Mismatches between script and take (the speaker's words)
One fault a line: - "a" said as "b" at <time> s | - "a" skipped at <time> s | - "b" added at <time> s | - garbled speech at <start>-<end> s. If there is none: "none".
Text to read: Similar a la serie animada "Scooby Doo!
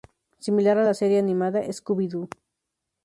none